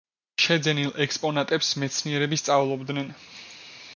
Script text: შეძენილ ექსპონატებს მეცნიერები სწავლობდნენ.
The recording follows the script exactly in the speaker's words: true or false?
true